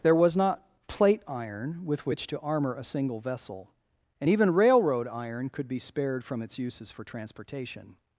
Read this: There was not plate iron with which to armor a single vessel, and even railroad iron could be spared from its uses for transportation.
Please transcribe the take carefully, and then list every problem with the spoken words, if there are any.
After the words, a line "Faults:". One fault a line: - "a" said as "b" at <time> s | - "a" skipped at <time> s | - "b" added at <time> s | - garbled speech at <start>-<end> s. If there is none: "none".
There was not plate iron with which to armor a single vessel, and even railroad iron could be spared from its uses for transportation.
Faults:
none